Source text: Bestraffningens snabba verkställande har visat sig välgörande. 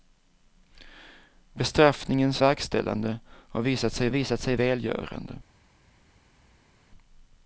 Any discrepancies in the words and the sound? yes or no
yes